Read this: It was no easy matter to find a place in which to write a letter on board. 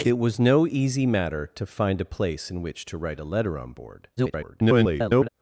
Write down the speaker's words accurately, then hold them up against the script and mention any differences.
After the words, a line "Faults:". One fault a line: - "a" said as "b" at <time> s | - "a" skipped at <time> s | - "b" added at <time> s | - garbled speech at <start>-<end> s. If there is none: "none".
It was no easy matter to find a place in which to write a letter on board. [garbled]
Faults:
- garbled speech at 4.2-5.3 s